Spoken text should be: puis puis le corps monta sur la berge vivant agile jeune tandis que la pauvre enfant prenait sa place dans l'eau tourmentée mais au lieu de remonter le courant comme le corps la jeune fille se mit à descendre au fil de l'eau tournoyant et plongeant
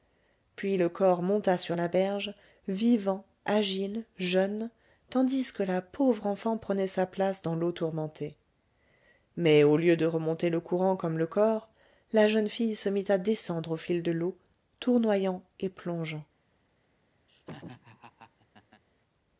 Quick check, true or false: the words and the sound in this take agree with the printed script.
false